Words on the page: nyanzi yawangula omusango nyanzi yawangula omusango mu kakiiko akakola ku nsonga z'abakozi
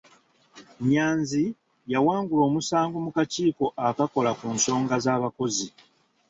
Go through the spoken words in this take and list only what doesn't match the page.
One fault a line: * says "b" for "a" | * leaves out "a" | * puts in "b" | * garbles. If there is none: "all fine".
* leaves out "nyanzi yawangula omusango"